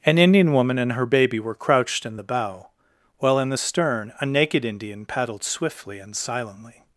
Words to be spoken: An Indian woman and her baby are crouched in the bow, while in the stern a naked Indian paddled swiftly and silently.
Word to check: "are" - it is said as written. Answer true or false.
false